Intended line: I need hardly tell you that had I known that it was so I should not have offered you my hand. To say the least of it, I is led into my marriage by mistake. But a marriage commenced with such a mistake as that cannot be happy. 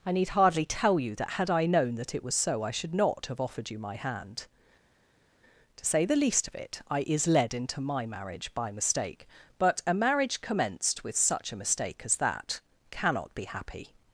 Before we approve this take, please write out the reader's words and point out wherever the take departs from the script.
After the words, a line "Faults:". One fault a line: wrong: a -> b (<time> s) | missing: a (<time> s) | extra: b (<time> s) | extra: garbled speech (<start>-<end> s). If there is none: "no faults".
I need hardly tell you that had I known that it was so I should not have offered you my hand. To say the least of it, I is led into my marriage by mistake. But a marriage commenced with such a mistake as that cannot be happy.
Faults:
no faults